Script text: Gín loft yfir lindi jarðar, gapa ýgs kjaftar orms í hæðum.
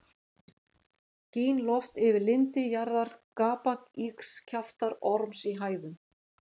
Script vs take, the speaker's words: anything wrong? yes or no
no